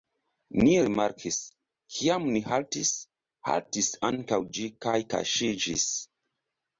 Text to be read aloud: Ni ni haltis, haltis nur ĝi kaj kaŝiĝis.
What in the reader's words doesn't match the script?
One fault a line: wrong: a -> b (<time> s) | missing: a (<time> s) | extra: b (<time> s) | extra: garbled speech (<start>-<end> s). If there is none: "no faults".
extra: rimarkis kiam (0.8 s)
wrong: nur -> ankaŭ (4.1 s)